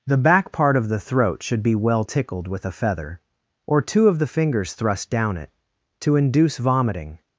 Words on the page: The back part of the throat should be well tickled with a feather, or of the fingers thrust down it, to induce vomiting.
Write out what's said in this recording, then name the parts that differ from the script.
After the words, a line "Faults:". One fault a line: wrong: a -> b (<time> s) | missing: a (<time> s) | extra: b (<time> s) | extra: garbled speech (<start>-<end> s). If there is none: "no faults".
The back part of the throat should be well tickled with a feather, or two of the fingers thrust down it, to induce vomiting.
Faults:
extra: two (3.8 s)